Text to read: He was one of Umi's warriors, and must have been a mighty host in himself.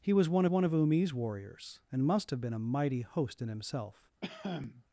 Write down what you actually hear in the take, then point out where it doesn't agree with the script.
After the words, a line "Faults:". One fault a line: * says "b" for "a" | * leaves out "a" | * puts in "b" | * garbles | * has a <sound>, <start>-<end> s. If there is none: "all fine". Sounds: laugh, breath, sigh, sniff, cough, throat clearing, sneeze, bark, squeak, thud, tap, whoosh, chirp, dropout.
He was one one of Umi's warriors, and must have been a mighty host in himself.
Faults:
* puts in "one"
* has a cough, 4.2-4.8 s